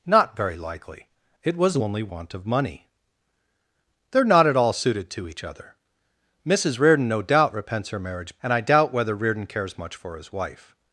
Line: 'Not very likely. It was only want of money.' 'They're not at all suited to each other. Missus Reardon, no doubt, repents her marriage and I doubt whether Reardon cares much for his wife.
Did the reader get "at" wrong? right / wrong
right